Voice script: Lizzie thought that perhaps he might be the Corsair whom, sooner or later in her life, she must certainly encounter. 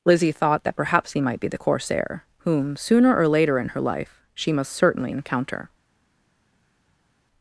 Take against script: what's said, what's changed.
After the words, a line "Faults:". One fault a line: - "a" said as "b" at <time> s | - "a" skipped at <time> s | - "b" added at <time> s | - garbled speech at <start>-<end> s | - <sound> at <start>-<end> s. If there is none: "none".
Lizzie thought that perhaps he might be the Corsair whom, sooner or later in her life, she must certainly encounter.
Faults:
none